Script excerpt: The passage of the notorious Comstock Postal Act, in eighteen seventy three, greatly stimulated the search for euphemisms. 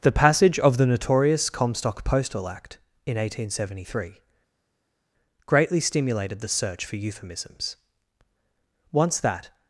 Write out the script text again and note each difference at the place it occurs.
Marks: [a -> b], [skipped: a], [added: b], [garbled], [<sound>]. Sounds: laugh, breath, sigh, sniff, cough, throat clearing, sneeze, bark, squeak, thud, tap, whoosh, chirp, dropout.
The passage of the notorious Comstock Postal Act, in eighteen seventy three, greatly stimulated the search for euphemisms. [added: Once that]